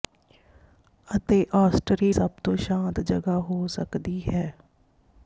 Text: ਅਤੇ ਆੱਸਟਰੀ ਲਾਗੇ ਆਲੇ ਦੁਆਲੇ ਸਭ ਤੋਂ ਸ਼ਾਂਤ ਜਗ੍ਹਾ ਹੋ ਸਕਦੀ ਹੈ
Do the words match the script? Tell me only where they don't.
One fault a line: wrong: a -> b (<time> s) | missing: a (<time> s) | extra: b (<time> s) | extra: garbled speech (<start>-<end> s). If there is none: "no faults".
missing: ਲਾਗੇ ਆਲੇ ਦੁਆਲੇ (2.1 s)